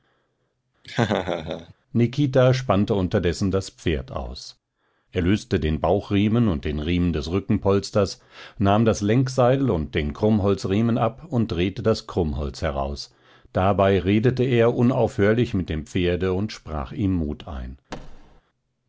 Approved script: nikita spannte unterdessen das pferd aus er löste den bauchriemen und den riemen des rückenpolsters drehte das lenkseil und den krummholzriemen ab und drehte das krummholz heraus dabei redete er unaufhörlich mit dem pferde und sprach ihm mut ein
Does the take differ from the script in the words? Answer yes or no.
yes